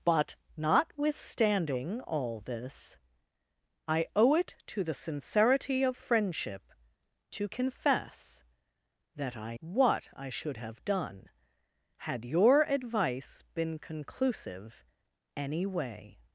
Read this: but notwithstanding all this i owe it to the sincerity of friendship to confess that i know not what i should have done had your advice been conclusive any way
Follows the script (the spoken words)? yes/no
no